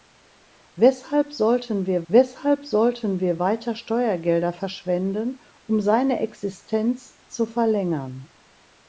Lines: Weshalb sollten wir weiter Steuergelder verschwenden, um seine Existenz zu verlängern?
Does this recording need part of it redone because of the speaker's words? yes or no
yes